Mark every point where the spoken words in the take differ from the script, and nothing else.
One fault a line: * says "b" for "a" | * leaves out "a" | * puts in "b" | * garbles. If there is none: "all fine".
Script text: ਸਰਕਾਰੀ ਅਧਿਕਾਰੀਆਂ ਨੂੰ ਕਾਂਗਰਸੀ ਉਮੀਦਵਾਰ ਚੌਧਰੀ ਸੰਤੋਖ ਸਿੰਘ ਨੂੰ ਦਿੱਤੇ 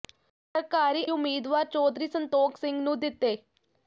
* leaves out "ਅਧਿਕਾਰੀਆਂ ਨੂੰ ਕਾਂਗਰਸੀ"